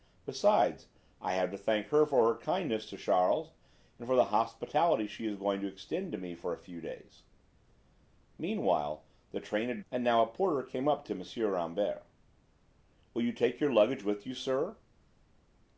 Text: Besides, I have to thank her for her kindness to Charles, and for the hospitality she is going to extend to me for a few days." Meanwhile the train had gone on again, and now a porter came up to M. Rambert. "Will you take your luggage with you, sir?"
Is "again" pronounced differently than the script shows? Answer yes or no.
yes